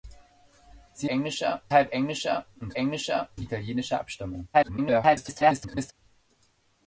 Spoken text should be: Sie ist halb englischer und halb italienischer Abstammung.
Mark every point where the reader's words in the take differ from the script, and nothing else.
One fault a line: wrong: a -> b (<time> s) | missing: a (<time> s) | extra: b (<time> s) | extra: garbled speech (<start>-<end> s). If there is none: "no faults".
wrong: ist -> englischer (1.1 s)
wrong: halb -> englischer (2.8 s)
extra: garbled speech (4.5-5.9 s)